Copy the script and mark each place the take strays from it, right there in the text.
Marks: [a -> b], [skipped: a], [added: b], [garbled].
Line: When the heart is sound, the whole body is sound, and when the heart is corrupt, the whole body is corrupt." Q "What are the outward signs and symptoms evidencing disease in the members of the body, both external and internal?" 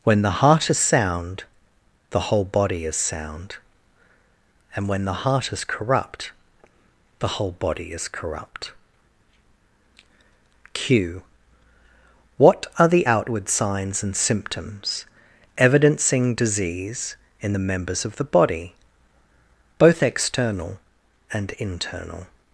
When the heart is sound, the whole body is sound, and when the heart is corrupt, the whole body is corrupt." Q "What are the outward signs and symptoms evidencing disease in the members of the body, both external and internal?"